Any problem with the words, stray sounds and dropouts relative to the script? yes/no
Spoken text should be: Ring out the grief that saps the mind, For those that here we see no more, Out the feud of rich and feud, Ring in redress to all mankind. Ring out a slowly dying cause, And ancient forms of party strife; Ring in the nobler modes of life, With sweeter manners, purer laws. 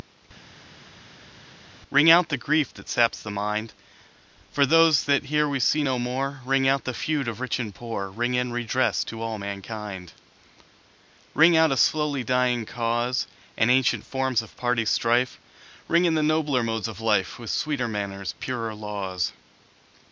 yes